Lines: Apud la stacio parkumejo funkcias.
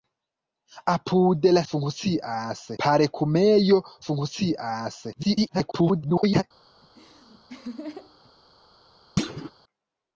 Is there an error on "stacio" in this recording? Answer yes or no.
yes